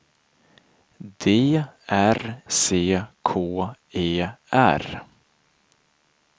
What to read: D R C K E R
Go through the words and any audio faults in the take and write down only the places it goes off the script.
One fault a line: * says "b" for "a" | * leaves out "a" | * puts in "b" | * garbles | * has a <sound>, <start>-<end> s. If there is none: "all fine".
all fine